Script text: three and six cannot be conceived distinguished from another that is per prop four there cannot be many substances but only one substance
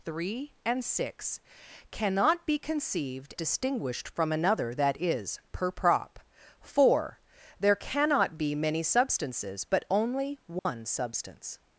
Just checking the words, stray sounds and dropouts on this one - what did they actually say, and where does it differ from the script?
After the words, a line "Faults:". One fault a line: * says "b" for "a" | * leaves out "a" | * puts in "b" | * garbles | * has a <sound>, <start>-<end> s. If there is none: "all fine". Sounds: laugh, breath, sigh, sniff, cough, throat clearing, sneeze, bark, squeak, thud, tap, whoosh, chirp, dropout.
three and six cannot be conceived distinguished from another that is per prop four there cannot be many substances but only one substance
Faults:
* has a dropout, 10.6-10.7 s